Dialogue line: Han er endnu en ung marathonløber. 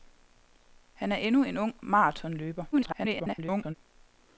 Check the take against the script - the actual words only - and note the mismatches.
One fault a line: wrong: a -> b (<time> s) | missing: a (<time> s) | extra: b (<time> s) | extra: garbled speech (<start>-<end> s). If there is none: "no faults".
extra: garbled speech (2.7-3.7 s)